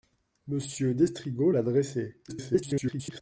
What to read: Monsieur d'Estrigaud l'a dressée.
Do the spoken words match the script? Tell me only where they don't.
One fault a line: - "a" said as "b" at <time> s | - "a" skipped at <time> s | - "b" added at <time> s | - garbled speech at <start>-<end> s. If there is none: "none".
- garbled speech at 2.3-3.2 s